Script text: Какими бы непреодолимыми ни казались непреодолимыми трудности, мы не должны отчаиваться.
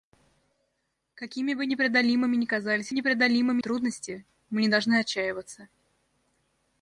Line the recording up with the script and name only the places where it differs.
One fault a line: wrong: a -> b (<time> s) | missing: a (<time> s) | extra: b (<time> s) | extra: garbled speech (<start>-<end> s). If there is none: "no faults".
no faults